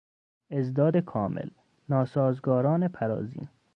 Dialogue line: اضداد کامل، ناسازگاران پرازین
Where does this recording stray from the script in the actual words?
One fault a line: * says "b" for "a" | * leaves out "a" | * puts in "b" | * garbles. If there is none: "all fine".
all fine